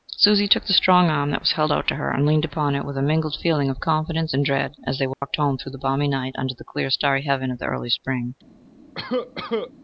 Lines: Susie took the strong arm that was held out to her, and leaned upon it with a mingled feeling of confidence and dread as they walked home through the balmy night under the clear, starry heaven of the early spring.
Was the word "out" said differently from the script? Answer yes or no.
no